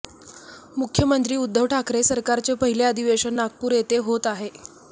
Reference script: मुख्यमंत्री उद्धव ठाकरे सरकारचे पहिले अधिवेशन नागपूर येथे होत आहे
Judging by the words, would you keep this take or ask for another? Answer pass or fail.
pass